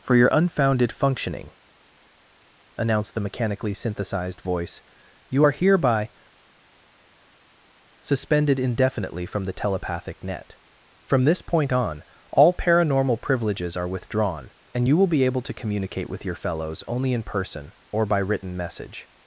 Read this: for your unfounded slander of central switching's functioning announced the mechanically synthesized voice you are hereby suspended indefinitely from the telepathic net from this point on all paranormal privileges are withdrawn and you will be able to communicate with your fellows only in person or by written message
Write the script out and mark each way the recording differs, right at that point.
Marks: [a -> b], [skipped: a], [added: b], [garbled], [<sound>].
for your unfounded [skipped: slander of central switching's] functioning announced the mechanically synthesized voice you are hereby suspended indefinitely from the telepathic net from this point on all paranormal privileges are withdrawn and you will be able to communicate with your fellows only in person or by written message